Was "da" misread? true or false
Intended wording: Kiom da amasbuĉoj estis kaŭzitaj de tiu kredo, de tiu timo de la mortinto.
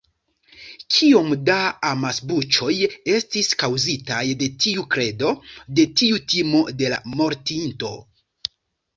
false